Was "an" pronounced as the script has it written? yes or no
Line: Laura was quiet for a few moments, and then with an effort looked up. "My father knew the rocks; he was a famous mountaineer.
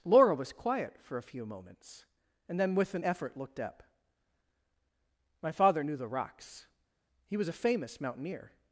yes